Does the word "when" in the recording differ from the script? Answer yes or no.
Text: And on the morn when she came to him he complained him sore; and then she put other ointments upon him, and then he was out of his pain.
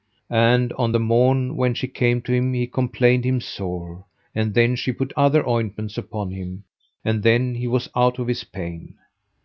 no